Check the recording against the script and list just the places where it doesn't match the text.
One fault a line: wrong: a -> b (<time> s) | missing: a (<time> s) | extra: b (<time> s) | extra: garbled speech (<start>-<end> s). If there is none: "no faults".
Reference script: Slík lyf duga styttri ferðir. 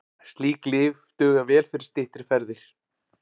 extra: vel fyrir (1.5 s)